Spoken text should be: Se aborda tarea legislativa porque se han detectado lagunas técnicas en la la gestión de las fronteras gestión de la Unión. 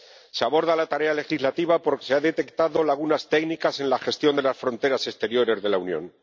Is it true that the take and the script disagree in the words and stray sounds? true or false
true